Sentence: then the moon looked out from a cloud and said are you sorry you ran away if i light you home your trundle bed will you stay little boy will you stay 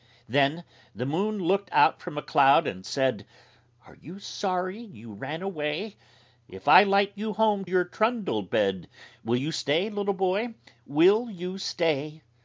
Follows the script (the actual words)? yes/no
yes